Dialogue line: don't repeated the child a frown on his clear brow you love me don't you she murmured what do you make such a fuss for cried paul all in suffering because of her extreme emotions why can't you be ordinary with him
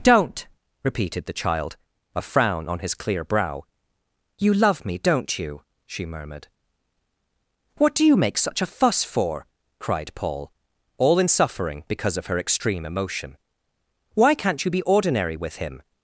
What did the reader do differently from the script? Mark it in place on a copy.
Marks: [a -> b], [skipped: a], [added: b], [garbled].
don't repeated the child a frown on his clear brow you love me don't you she murmured what do you make such a fuss for cried paul all in suffering because of her extreme [emotions -> emotion] why can't you be ordinary with him